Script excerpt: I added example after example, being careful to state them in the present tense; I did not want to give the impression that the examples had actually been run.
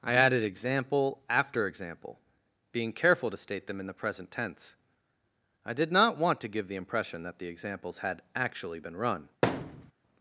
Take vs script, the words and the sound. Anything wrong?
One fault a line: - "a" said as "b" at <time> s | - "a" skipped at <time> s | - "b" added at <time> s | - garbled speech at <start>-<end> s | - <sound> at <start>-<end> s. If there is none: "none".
- thud at 9.4-9.9 s